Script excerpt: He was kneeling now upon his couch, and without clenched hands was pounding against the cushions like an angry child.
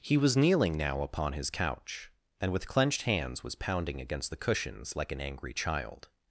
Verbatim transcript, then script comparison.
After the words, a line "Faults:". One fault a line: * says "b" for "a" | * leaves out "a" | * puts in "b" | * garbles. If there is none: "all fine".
He was kneeling now upon his couch, and with clenched hands was pounding against the cushions like an angry child.
Faults:
* says "with" for "without"